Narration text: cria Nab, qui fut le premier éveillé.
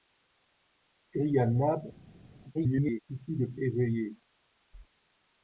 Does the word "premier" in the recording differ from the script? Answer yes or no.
yes